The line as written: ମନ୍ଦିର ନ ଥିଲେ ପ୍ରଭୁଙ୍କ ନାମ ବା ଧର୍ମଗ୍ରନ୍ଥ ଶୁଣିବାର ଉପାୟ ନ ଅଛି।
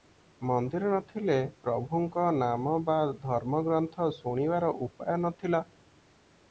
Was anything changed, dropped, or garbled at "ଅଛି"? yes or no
yes